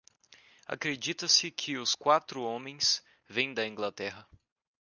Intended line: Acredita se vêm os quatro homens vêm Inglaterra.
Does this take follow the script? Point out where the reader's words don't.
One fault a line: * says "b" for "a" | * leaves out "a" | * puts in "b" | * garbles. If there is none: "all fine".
* says "que" for "vêm"
* puts in "da"